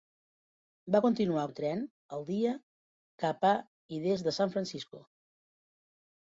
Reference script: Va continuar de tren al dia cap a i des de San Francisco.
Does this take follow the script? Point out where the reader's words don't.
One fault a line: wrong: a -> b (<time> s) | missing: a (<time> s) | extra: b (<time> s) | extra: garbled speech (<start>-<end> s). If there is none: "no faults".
no faults